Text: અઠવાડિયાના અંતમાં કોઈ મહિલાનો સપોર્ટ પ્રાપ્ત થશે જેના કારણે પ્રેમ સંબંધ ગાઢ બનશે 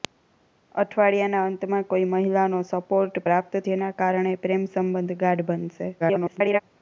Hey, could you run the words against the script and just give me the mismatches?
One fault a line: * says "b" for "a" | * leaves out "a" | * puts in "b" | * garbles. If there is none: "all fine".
* leaves out "થશે"
* garbles